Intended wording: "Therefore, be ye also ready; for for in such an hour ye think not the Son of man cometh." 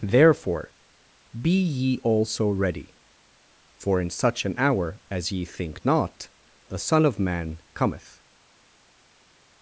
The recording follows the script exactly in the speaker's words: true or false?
false